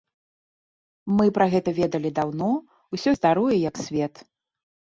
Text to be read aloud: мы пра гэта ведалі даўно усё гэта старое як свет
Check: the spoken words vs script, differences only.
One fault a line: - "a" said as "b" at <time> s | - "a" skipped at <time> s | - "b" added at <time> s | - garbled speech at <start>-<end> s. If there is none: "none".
- "гэта" skipped at 3.1 s